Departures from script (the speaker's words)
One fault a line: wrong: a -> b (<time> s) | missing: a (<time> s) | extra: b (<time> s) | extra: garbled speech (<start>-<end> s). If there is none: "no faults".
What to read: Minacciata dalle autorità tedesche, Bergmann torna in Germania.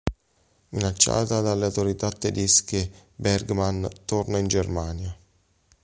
no faults